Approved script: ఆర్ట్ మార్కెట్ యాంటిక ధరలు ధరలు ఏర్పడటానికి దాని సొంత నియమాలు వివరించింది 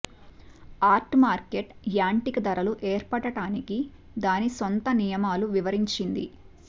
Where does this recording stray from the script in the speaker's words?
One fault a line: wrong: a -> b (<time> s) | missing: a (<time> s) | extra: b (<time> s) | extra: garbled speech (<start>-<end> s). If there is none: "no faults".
missing: ధరలు (2.7 s)